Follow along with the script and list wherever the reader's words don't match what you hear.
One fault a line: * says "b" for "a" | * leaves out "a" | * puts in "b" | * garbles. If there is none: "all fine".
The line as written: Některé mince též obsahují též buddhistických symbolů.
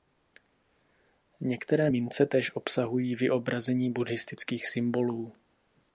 * says "vyobrazení" for "též"